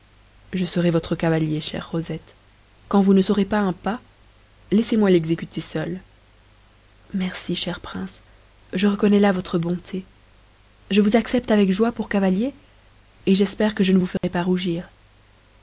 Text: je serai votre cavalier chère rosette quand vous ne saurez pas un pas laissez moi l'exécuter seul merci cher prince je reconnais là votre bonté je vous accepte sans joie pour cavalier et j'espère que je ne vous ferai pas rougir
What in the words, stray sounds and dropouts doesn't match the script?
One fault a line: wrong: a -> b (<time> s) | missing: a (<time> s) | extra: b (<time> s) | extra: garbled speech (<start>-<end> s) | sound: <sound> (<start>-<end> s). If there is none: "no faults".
wrong: sans -> avec (11.5 s)
sound: dropout (14.2-14.2 s)